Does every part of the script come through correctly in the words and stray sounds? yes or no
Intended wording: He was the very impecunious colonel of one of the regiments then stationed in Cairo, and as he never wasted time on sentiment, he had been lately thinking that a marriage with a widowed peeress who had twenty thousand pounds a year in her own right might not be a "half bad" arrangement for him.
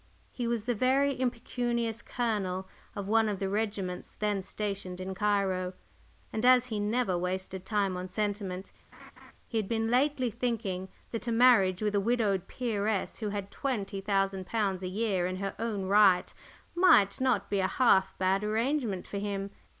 no